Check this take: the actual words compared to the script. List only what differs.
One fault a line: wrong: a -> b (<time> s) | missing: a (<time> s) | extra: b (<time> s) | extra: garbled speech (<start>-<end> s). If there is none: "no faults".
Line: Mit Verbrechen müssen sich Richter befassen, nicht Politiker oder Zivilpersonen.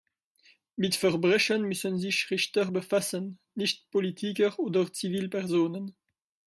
no faults